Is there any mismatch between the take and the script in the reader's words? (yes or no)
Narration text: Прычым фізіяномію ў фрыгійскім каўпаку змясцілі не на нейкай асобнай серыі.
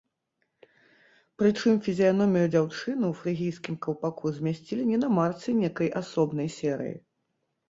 yes